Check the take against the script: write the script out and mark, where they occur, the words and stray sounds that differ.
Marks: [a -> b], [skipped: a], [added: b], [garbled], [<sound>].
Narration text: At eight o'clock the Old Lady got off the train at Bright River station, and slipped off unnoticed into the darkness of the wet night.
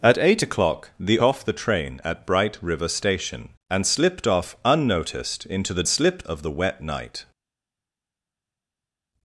At eight o'clock the [skipped: Old Lady got] off the train at Bright River station, and slipped off unnoticed into the [darkness -> slipped] of the wet night.